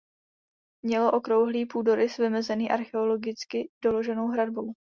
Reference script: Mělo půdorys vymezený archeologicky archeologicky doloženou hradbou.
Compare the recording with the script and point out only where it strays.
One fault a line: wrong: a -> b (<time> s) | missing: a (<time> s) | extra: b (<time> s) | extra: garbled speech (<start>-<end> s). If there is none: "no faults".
extra: okrouhlý (1.1 s)
missing: archeologicky (3.7 s)